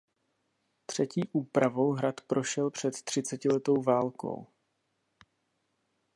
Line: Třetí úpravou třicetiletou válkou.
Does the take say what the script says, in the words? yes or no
no